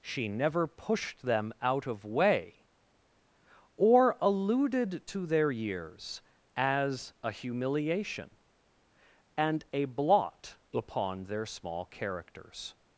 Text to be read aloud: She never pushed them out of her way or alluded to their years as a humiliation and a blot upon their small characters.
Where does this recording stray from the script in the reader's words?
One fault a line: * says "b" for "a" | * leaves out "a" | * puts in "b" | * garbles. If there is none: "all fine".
* leaves out "her"